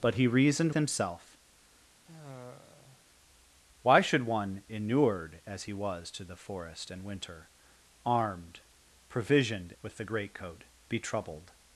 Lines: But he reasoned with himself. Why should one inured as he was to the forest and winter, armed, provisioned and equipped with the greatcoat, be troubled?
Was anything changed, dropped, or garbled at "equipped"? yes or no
yes